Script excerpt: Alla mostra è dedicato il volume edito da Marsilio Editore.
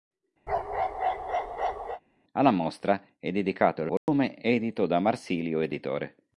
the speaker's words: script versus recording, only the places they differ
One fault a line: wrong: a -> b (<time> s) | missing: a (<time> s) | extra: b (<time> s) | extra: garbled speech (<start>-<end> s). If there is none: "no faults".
no faults